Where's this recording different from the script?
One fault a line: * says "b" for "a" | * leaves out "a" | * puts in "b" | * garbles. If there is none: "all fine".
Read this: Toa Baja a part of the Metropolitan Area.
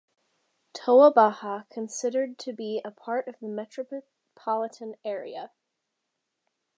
* puts in "considered to be"